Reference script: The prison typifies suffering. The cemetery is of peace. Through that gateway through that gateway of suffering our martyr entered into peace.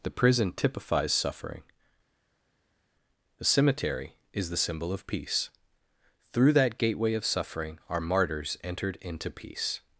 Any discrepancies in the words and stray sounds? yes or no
yes